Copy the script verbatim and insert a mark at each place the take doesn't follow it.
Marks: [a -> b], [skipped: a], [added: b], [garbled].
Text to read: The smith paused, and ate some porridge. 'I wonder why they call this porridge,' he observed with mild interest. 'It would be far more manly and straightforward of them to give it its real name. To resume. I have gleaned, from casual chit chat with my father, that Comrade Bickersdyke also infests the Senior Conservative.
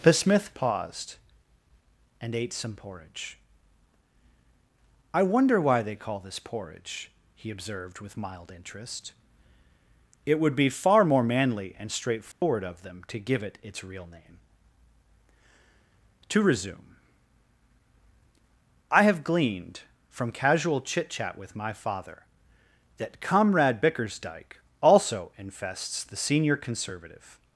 The smith paused, and ate some porridge. 'I wonder why they call this porridge,' he observed with mild interest. 'It would be far more manly and straightforward of them to give it its real name. To resume. I have gleaned, from casual chit chat with my father, that Comrade Bickersdyke also infests the Senior Conservative.